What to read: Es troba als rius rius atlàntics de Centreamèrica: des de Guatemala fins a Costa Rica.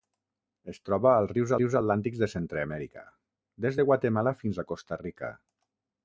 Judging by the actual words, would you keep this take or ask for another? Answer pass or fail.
pass